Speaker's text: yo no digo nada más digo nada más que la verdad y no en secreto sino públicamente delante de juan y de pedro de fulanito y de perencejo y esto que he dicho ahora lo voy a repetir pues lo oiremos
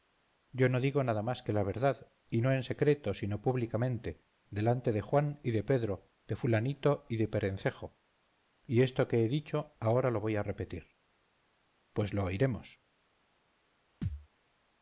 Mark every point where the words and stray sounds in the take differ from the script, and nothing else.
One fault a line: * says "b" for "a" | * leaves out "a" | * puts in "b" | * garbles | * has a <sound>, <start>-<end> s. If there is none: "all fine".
* leaves out "digo nada más"
* has a thud, 14.0-14.3 s